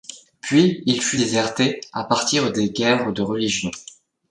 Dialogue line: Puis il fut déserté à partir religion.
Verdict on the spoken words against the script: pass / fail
fail